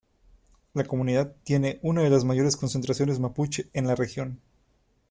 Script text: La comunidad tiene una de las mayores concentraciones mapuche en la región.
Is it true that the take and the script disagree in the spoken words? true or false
false